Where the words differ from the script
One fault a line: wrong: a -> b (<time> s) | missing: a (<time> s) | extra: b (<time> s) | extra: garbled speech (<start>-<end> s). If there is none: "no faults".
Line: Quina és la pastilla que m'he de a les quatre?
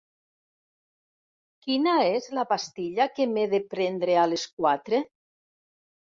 extra: prendre (3.8 s)